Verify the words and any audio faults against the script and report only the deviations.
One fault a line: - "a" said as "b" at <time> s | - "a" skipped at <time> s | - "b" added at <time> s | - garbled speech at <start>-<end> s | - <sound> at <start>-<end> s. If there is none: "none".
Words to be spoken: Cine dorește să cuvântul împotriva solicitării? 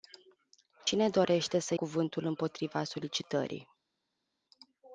none